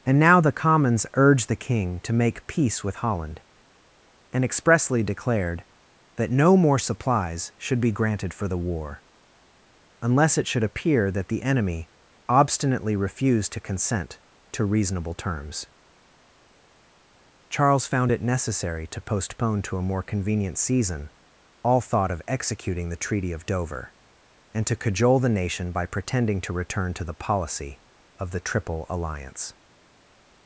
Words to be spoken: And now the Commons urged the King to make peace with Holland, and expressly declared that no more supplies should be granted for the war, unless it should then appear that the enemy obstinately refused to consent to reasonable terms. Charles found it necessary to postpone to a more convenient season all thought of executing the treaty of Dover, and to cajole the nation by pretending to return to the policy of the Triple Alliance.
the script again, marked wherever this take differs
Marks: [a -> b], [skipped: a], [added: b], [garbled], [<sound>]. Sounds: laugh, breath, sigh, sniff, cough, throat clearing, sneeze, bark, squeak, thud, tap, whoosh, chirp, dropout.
And now the Commons urged the King to make peace with Holland, and expressly declared that no more supplies should be granted for the war, unless it should [skipped: then] appear that the enemy obstinately refused to consent to reasonable terms. Charles found it necessary to postpone to a more convenient season all thought of executing the treaty of Dover, and to cajole the nation by pretending to return to the policy of the Triple Alliance.